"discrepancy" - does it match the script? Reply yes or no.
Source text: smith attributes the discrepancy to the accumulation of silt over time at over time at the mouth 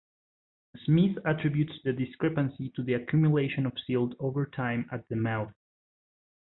yes